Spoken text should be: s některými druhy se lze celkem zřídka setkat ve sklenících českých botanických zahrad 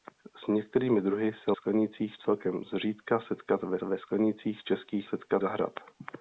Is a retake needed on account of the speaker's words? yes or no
yes